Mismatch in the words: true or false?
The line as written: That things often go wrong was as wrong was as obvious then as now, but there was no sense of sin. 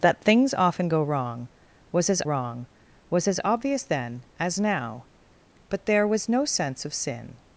false